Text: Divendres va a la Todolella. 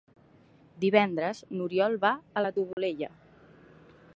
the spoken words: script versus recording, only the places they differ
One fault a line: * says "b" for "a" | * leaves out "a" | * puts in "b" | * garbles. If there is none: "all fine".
* puts in "n'Oriol"